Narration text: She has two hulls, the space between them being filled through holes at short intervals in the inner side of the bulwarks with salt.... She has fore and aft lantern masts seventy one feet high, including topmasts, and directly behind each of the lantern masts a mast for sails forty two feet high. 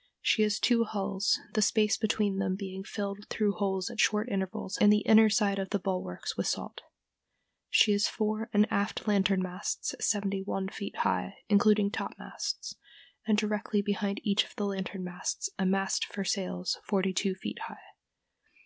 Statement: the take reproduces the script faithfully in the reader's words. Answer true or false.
true